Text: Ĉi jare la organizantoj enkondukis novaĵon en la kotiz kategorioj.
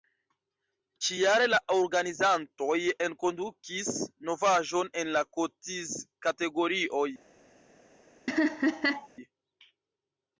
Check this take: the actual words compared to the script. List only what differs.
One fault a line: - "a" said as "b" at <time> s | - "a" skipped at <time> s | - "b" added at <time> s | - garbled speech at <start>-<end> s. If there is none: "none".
none